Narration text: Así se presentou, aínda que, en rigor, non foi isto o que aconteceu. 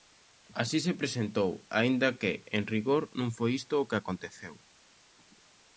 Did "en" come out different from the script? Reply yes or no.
no